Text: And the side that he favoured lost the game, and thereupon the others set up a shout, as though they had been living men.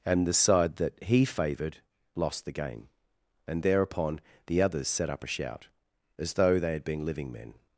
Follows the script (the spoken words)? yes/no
yes